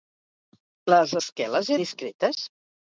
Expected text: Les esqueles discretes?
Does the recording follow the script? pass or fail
pass